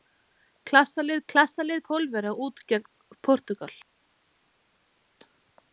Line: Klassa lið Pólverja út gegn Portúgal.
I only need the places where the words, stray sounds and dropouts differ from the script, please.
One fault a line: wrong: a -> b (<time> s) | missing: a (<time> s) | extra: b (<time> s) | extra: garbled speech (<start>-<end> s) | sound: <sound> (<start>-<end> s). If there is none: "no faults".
extra: klassa lið (1.3 s)